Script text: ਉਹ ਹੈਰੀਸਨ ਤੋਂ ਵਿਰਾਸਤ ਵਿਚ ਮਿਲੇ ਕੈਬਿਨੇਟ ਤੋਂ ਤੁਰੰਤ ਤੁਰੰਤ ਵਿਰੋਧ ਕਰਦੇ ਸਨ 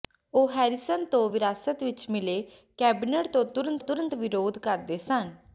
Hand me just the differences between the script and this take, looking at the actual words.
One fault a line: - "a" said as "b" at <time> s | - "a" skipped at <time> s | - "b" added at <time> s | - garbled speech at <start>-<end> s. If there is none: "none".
none